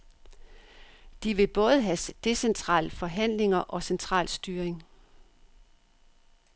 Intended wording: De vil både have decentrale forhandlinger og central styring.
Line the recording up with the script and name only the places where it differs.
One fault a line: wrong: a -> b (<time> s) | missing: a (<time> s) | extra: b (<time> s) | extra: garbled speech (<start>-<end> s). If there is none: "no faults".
no faults